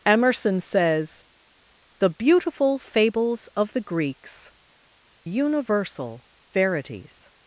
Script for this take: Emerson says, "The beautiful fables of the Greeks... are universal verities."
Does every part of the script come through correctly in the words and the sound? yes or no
no